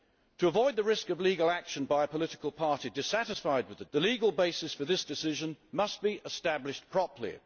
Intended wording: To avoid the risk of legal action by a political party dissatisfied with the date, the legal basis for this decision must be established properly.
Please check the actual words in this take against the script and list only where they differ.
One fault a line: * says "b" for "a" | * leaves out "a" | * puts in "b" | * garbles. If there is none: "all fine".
* leaves out "date"